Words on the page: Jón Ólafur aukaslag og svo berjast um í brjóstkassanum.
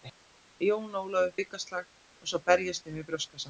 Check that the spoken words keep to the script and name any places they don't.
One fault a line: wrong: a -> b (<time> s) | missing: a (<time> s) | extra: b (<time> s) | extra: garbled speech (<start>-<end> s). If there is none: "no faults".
no faults